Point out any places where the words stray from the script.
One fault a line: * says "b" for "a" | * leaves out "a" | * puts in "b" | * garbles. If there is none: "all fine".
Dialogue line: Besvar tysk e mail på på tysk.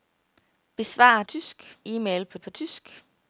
all fine